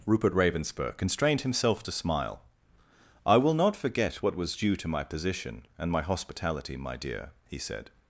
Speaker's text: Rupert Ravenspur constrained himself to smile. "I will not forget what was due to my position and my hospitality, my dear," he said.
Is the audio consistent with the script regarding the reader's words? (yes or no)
yes